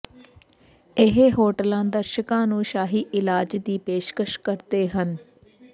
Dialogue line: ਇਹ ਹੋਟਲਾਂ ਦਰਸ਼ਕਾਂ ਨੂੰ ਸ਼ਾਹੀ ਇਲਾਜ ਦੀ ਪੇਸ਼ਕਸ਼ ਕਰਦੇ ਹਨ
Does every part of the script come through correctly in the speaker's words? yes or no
yes